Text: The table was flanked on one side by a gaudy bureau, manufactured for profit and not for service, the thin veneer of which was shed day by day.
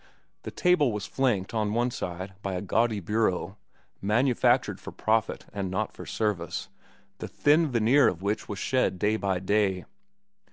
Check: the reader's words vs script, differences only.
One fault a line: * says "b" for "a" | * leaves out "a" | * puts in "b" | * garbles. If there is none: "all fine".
all fine